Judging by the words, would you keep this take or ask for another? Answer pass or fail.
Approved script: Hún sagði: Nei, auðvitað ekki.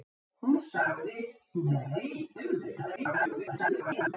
fail